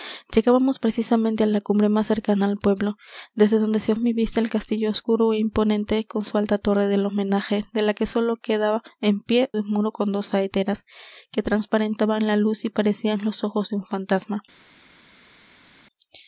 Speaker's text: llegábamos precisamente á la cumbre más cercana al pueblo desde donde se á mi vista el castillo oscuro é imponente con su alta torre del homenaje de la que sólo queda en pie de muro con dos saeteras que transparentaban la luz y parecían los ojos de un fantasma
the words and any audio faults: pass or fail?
pass